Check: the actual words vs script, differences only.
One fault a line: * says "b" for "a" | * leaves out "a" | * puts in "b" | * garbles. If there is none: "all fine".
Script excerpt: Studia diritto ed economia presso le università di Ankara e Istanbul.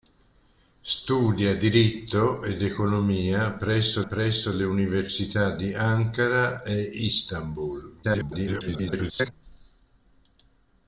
* puts in "presso"
* garbles